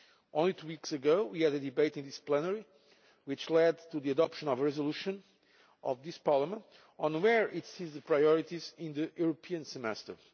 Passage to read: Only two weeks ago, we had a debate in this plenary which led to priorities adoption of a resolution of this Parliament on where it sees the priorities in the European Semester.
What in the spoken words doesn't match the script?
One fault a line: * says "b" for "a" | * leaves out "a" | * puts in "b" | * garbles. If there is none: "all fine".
* says "the" for "priorities"